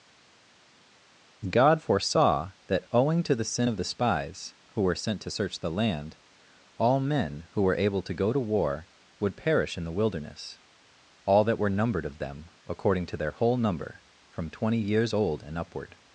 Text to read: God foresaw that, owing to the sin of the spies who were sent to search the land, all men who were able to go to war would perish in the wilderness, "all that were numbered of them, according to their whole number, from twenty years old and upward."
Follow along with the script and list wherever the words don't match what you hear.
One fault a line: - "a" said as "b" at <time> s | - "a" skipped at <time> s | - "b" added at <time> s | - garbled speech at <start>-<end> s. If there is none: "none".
none